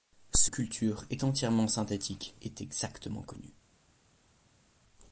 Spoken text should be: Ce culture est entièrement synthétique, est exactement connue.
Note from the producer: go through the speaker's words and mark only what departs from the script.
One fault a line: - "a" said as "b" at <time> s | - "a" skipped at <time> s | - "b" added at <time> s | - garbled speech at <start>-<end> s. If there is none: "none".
none